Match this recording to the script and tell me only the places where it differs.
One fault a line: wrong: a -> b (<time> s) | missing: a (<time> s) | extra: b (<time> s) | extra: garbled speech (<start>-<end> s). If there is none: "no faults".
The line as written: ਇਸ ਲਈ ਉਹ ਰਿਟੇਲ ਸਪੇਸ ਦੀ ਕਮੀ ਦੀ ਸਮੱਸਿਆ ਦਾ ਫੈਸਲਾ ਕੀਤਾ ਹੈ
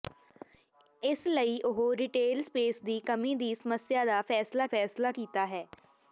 extra: ਫੈਸਲਾ (4.7 s)